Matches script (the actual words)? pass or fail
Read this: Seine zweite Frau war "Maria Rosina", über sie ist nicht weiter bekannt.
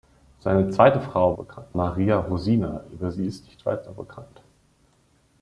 fail